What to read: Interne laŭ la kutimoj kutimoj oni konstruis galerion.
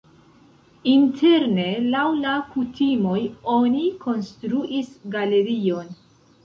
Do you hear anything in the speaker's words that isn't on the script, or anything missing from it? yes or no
yes